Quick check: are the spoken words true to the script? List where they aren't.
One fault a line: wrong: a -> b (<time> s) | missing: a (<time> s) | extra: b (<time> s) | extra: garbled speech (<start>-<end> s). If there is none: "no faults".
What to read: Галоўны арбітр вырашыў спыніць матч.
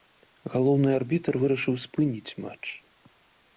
no faults